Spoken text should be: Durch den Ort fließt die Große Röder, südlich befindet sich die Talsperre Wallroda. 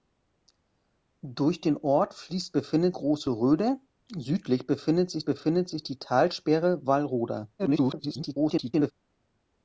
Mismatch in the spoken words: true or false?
true